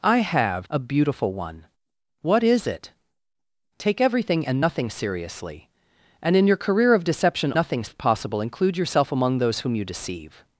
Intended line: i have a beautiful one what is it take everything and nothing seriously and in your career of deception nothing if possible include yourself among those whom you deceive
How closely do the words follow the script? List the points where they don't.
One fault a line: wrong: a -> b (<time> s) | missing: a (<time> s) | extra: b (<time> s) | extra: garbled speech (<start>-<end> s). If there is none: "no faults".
no faults